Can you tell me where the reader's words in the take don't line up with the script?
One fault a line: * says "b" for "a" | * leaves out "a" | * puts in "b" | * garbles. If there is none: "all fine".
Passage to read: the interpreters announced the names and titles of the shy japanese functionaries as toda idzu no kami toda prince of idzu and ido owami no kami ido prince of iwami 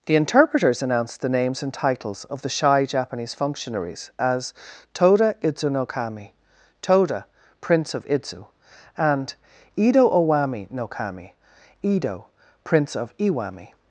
all fine